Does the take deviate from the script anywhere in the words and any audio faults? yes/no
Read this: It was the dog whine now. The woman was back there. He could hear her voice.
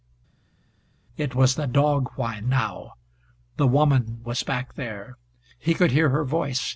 no